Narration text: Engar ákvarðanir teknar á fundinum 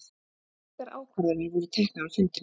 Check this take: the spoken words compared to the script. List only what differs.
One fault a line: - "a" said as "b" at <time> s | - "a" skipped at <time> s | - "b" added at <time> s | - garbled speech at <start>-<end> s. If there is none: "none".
- "voru" added at 1.6 s